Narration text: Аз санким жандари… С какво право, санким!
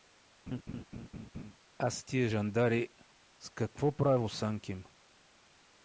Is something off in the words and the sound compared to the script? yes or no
yes